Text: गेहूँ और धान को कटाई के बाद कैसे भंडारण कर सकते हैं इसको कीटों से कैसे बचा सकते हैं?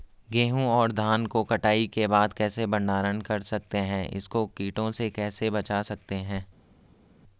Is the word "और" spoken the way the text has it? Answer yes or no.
yes